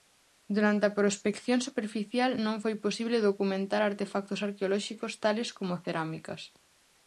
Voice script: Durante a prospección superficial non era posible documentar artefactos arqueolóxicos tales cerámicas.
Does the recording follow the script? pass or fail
fail